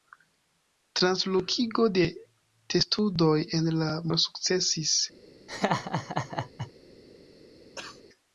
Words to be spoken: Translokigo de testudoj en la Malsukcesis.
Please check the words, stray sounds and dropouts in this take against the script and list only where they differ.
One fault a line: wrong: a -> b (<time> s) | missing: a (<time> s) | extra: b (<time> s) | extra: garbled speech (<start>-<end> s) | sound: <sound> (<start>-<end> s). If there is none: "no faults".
sound: laugh (5.5-6.7 s)
sound: cough (7.7-8.0 s)